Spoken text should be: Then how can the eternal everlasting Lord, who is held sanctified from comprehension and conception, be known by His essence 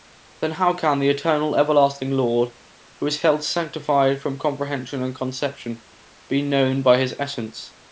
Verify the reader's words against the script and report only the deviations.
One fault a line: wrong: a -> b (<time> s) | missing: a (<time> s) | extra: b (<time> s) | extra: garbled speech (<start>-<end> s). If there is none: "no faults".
no faults